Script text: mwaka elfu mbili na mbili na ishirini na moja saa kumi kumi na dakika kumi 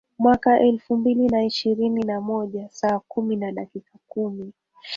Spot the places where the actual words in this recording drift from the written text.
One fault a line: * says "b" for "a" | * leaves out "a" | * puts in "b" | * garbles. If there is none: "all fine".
* leaves out "mbili na"
* leaves out "kumi"